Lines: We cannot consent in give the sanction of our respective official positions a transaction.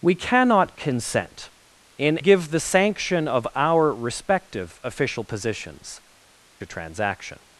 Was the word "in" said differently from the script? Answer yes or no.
no